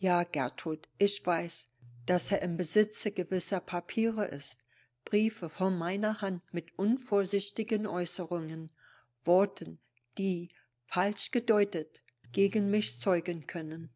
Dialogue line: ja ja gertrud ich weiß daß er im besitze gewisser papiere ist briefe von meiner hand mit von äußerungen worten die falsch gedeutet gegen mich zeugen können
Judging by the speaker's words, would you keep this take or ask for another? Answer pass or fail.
fail